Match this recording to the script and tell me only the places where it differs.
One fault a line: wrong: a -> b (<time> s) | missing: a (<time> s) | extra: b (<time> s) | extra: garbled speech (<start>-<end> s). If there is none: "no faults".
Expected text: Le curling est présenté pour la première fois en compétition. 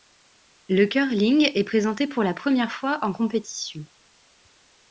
no faults